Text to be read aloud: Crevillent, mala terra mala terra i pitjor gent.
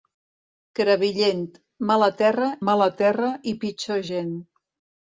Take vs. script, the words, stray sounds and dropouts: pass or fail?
pass